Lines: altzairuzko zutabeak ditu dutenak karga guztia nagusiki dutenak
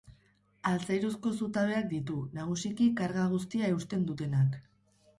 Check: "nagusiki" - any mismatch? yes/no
yes